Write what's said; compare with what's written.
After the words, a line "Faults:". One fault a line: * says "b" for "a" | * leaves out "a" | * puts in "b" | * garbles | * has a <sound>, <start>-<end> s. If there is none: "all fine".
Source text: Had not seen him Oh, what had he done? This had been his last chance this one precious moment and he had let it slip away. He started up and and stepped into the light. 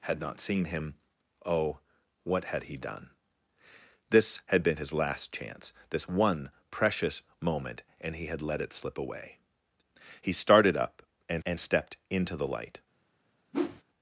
Had not seen him Oh, what had he done? This had been his last chance this one precious moment and he had let it slip away. He started up and and stepped into the light.
Faults:
* has a whoosh, 13.5-13.8 s